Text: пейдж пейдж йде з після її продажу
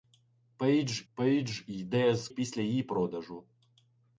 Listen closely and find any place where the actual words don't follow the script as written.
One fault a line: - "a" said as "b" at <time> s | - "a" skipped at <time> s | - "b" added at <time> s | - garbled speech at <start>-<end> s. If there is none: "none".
none